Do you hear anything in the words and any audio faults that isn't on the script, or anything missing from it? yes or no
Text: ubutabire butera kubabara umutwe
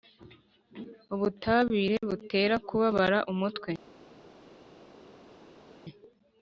no